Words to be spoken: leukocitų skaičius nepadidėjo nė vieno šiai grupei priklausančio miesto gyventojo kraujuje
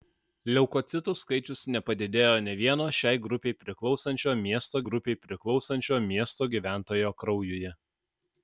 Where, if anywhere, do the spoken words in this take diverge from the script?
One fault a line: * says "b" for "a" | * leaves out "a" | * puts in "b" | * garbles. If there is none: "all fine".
* puts in "grupei priklausančio miesto"